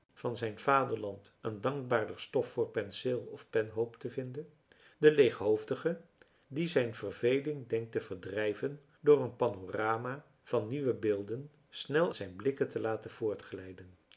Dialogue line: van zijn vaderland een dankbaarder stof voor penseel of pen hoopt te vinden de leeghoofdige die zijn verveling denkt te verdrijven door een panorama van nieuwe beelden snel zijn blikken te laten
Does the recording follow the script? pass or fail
pass